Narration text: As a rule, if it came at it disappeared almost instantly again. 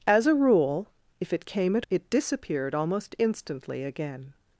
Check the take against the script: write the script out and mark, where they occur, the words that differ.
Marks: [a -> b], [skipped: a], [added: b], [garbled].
As a rule, if it came at it disappeared almost instantly again.